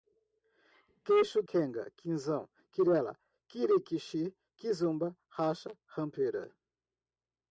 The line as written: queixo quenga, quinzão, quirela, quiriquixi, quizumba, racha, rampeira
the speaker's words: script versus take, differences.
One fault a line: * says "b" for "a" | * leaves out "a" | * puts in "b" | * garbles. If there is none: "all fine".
all fine